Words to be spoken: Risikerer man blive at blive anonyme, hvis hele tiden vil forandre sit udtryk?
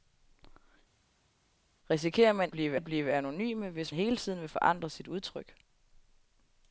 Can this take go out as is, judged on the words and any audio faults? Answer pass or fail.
pass